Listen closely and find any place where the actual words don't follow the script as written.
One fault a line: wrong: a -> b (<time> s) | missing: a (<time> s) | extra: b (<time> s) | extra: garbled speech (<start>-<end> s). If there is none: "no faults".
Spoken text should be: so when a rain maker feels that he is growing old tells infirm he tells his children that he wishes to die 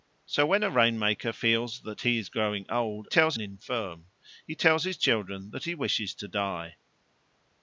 no faults